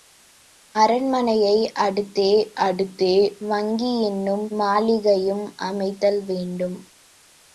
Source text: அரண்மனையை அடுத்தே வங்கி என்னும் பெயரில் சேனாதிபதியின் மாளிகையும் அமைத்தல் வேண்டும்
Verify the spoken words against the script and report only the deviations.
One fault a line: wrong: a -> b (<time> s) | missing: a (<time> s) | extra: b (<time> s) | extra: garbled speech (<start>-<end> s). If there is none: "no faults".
extra: அடுத்தே (2.6 s)
missing: பெயரில் சேனாதிபதியின் (4.4 s)